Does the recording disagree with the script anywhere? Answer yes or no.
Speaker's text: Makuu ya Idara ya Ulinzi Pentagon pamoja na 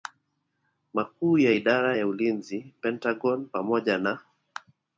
no